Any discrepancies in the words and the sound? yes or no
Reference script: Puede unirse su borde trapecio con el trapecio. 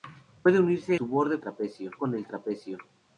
no